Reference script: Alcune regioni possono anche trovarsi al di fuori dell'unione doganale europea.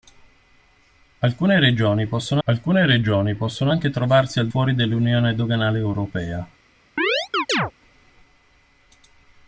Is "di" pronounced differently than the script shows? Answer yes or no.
yes